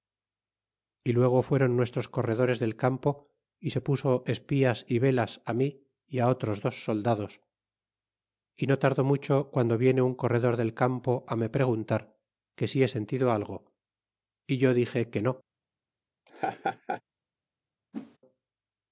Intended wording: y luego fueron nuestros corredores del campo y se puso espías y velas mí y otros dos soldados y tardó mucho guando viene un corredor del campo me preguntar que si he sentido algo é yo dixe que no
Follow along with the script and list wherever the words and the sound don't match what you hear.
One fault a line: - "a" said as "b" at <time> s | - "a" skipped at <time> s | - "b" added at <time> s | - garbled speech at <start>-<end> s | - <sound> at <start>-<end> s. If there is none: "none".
- "no" added at 8.7 s
- laugh at 16.3-17.0 s
- whoosh at 17.9-18.2 s